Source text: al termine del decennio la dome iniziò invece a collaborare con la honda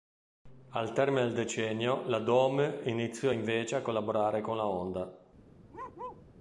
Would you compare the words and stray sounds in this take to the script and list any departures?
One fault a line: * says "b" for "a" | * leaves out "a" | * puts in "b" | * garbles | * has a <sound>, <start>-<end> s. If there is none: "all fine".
* has a bark, 5.7-6.3 s